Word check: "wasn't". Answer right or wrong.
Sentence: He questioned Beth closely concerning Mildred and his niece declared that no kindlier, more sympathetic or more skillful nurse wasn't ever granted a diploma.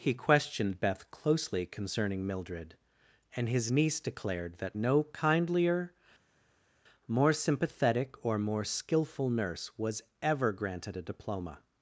wrong